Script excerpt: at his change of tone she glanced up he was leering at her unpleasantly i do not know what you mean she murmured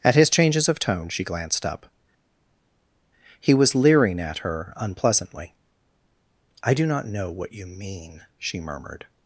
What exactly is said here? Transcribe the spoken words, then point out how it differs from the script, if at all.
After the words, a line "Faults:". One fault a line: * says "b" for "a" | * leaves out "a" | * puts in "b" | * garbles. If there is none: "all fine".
at his changes of tone she glanced up he was leering at her unpleasantly i do not know what you mean she murmured
Faults:
* says "changes" for "change"